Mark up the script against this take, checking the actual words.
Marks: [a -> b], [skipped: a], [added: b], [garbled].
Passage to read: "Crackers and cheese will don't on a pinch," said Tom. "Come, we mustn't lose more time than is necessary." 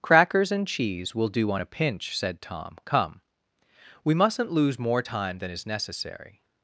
"Crackers and cheese will [don't -> do] on a pinch," said Tom. "Come, we mustn't lose more time than is necessary."